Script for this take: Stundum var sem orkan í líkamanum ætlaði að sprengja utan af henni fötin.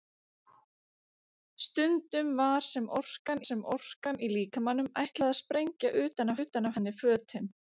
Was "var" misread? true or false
false